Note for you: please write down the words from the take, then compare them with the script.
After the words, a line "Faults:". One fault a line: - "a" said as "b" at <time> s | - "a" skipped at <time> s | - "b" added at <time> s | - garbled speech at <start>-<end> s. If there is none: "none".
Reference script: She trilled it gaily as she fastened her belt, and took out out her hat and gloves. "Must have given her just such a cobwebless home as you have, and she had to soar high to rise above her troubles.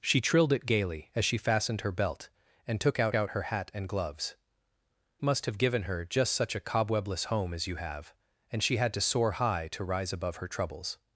She trilled it gaily as she fastened her belt, and took out out her hat and gloves. "Must have given her just such a cobwebless home as you have, and she had to soar high to rise above her troubles.
Faults:
none